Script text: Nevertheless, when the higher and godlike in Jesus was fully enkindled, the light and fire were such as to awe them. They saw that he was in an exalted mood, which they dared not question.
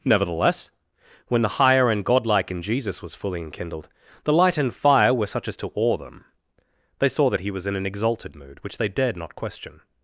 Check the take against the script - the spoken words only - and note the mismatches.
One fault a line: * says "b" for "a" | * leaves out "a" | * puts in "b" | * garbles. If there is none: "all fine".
all fine